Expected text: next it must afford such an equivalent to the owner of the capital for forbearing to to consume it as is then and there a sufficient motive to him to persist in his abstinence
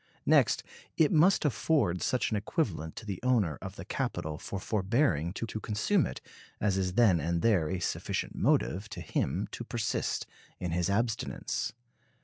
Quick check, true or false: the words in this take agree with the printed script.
true